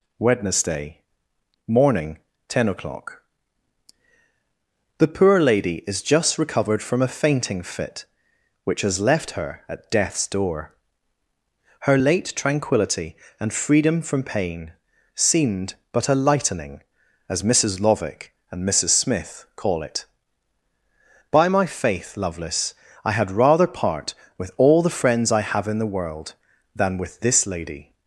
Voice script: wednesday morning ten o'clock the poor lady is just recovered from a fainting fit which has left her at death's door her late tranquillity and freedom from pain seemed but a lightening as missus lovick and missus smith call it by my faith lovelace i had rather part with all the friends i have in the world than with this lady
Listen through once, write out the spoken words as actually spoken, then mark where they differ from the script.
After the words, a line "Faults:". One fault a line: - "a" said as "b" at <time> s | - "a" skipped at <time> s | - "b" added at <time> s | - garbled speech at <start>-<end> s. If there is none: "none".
wednesday morning ten o'clock the poor lady is just recovered from a fainting fit which has left her at death's door her late tranquillity and freedom from pain seemed but a lightening as missus lovick and missus smith call it by my faith lovelace i had rather part with all the friends i have in the world than with this lady
Faults:
none